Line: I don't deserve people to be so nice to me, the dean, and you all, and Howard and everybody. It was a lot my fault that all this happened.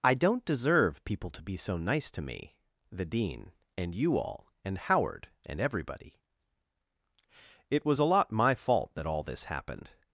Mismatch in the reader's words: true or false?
false